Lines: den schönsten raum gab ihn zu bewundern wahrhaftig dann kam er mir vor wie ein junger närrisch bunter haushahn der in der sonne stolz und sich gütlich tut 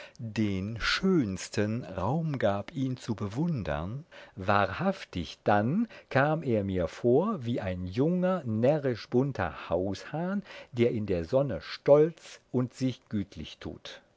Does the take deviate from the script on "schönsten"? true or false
false